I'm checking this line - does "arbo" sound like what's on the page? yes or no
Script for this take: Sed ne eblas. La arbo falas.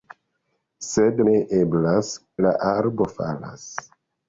yes